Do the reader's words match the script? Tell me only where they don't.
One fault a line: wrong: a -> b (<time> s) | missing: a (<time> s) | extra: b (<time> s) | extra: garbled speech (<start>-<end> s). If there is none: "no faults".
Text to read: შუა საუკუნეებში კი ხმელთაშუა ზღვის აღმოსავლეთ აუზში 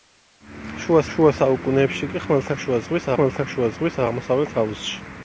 extra: შუა (1.1 s)
extra: ხმელთაშუა ზღვის (3.2 s)